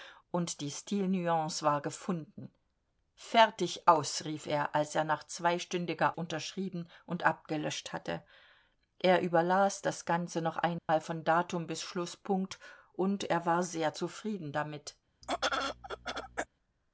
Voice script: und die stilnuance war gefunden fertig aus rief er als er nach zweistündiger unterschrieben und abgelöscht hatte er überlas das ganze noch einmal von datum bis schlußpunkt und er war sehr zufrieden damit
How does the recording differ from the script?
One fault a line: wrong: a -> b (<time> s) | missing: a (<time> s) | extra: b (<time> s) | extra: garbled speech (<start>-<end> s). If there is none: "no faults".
no faults